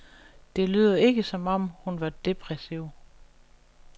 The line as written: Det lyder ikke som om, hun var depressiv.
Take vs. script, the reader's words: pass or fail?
pass